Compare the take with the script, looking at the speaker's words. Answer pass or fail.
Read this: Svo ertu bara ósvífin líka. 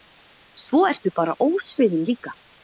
pass